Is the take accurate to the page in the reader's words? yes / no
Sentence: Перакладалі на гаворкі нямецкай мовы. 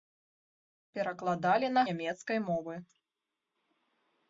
no